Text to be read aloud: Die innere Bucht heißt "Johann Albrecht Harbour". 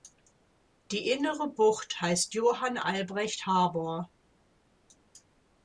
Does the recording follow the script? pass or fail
pass